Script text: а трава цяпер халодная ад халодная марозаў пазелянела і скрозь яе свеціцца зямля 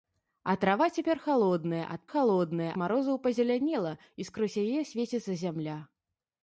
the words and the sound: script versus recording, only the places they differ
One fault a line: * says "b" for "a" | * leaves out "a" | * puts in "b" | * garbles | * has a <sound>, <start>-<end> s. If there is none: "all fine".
all fine